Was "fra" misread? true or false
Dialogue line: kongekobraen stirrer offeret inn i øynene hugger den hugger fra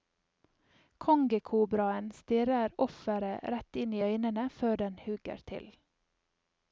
true